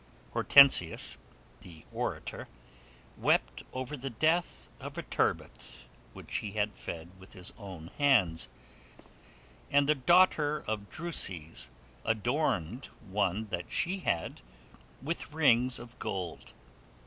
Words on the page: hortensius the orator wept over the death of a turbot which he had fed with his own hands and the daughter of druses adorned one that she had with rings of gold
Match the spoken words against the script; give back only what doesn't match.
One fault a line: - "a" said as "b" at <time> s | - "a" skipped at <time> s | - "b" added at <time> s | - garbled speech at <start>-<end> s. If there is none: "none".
none